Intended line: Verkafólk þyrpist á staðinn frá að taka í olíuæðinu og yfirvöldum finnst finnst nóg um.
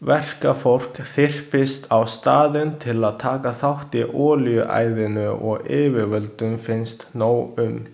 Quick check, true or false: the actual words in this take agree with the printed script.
false